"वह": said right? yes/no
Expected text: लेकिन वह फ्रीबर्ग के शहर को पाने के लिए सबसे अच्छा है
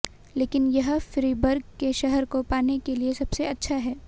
no